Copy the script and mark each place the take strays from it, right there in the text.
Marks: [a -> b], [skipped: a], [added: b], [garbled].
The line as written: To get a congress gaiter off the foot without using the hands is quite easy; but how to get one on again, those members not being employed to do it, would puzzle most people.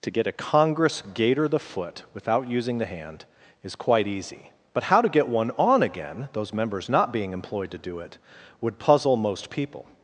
To get a congress gaiter [skipped: off] the foot without using the [hands -> hand] is quite easy; but how to get one on again, those members not being employed to do it, would puzzle most people.